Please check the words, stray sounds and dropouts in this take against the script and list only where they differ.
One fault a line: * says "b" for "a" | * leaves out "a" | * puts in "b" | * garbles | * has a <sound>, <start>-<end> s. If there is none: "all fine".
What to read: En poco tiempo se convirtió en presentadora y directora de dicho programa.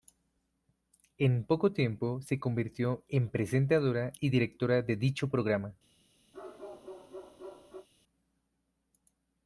* has a bark, 6.3-7.9 s